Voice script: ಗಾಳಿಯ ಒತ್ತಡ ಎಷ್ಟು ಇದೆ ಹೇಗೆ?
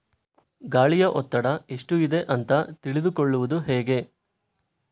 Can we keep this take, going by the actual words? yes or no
no